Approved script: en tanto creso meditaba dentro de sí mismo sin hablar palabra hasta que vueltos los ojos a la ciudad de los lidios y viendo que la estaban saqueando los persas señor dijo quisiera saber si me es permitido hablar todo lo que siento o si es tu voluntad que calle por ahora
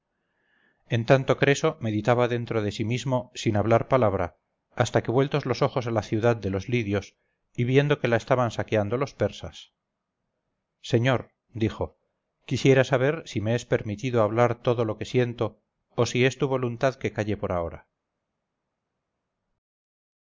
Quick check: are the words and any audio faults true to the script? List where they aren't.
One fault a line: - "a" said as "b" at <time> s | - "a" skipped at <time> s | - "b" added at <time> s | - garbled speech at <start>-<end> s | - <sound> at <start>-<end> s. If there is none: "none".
none